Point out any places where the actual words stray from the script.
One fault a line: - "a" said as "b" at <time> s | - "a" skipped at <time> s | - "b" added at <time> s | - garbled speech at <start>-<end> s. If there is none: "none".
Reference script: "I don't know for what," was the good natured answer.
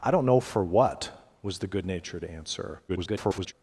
- garbled speech at 2.9-3.5 s